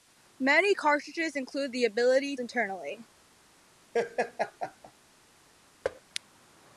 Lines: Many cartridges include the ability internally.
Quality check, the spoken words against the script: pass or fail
pass